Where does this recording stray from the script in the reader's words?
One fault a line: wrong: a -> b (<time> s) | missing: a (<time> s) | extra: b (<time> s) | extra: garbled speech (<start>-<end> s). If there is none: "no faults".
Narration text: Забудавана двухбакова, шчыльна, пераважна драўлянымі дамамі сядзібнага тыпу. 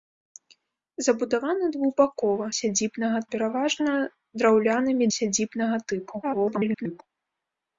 wrong: шчыльна -> сядзібнага (2.6 s)
missing: дамамі (5.0 s)
extra: garbled speech (6.2-7.0 s)